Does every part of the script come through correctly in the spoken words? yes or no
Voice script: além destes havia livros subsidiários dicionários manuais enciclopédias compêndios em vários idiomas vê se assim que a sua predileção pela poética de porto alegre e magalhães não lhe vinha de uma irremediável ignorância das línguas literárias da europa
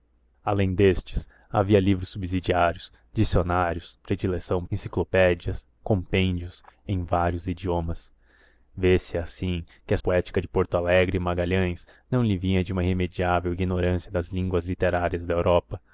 no